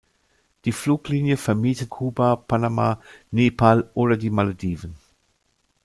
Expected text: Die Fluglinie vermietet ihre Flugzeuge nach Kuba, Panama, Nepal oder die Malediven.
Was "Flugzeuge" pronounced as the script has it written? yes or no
no